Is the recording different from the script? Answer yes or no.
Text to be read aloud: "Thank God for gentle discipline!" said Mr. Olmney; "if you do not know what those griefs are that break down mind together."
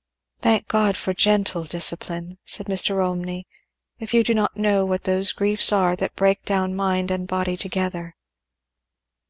yes